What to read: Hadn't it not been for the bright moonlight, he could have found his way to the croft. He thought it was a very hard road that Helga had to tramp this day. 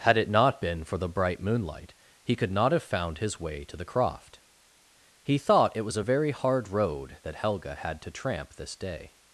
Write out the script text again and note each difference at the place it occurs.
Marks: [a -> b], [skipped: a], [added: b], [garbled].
[Hadn't -> Had] it not been for the bright moonlight, he could [added: not] have found his way to the croft. He thought it was a very hard road that Helga had to tramp this day.